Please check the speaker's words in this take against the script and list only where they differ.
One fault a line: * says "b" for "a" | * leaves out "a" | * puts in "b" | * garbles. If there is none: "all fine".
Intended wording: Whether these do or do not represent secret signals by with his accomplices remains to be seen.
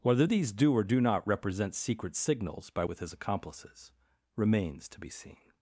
all fine